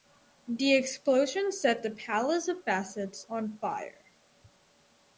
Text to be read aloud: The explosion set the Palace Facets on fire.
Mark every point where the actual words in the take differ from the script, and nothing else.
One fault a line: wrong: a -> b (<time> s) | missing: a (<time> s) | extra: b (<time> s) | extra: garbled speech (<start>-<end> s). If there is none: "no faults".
extra: of (2.5 s)